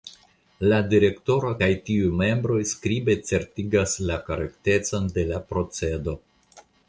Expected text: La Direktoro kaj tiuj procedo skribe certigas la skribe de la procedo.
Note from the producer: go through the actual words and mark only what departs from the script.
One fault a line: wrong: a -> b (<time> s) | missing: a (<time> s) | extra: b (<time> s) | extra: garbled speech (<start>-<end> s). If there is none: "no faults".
wrong: procedo -> membroj (2.2 s)
wrong: skribe -> korektecon (4.3 s)